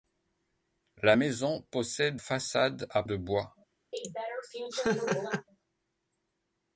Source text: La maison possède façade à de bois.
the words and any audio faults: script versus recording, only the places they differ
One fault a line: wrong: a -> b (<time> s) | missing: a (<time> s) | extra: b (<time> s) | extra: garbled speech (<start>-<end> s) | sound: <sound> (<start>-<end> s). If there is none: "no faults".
sound: laugh (3.9-5.5 s)